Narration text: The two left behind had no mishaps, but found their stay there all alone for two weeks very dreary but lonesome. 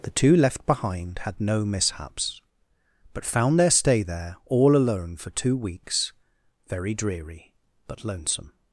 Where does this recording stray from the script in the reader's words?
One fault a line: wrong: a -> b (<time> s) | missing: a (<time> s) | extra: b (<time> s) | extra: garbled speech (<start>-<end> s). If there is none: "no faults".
no faults